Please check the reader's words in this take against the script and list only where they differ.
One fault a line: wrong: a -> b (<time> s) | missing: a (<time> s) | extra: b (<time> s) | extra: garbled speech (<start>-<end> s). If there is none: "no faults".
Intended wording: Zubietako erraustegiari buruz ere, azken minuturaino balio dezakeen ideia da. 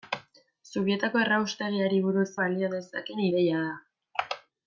missing: ere azken minuturaino (2.2 s)